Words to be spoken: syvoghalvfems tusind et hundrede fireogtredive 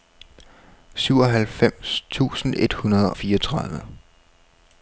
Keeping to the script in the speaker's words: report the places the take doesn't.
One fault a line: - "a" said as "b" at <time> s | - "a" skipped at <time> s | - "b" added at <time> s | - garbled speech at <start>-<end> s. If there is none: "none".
none